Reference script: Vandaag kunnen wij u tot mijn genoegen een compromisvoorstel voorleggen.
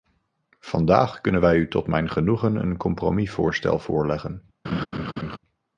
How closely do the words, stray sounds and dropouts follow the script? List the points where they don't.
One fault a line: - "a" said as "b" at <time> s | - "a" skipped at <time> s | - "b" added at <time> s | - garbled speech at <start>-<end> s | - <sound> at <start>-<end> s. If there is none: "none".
- laugh at 4.6-5.4 s